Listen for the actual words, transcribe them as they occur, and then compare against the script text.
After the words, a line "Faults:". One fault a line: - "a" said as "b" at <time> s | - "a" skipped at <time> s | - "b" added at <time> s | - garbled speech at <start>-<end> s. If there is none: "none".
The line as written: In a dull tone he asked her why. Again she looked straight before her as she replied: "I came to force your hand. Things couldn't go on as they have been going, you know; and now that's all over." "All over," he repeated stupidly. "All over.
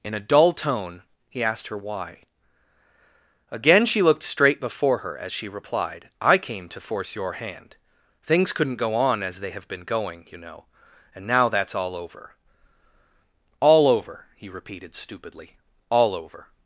In a dull tone he asked her why. Again she looked straight before her as she replied: "I came to force your hand. Things couldn't go on as they have been going, you know; and now that's all over." "All over," he repeated stupidly. "All over.
Faults:
none